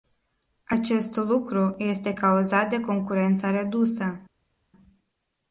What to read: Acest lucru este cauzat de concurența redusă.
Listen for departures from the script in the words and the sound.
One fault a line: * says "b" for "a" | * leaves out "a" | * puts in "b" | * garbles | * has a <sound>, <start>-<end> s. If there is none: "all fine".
all fine